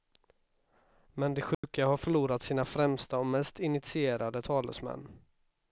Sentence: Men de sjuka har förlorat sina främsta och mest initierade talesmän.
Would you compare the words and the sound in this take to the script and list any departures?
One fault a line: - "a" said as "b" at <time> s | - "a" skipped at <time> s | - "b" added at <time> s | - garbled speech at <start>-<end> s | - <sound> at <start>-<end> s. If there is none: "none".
- dropout at 1.5-1.6 s